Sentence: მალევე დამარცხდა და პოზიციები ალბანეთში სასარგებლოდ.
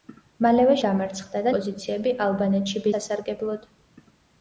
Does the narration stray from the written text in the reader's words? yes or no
no